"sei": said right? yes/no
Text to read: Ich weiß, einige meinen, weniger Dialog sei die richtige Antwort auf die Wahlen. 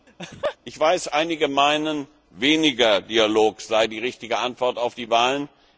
yes